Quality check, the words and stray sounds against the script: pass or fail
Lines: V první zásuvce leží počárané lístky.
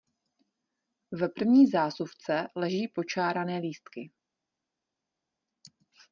pass